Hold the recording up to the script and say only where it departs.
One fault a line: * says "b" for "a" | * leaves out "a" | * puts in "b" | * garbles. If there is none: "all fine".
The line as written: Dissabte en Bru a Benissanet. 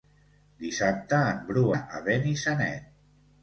all fine